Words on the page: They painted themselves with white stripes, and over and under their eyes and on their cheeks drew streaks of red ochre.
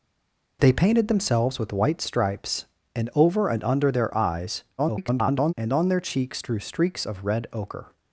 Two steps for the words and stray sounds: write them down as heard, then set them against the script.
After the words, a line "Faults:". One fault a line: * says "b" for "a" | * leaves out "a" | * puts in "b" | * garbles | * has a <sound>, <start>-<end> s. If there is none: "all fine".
They painted themselves with white stripes, and over and under their eyes [garbled] and on their cheeks drew streaks of red ochre.
Faults:
* garbles